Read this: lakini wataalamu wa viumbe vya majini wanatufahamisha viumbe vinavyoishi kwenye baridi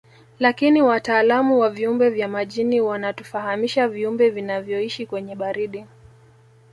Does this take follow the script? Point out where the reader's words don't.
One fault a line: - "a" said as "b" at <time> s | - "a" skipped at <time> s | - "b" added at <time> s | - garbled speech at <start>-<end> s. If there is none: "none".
none